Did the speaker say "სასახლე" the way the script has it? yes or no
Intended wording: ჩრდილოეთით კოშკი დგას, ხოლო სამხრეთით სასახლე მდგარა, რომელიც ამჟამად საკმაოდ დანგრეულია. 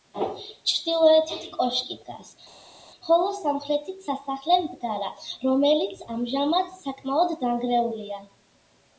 yes